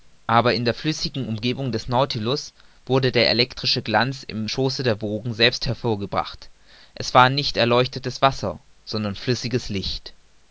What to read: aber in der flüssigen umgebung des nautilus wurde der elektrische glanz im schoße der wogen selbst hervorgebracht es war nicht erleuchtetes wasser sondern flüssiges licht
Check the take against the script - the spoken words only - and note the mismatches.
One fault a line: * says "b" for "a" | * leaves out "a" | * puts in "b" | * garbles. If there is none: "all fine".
all fine